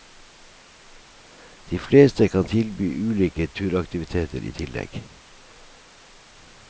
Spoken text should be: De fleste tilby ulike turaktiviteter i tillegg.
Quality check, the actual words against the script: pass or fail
fail